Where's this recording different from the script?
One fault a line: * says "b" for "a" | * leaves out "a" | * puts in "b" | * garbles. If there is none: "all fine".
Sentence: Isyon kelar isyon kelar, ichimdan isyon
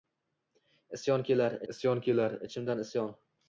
all fine